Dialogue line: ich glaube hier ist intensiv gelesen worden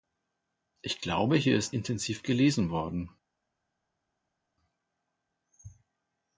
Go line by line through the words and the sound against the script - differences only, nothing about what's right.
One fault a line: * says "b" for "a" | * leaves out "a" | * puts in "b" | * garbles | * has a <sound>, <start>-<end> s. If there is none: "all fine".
all fine